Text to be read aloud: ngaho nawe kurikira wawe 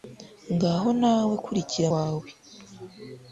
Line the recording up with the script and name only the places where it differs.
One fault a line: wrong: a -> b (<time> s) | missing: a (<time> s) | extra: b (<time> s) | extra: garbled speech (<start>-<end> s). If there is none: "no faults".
no faults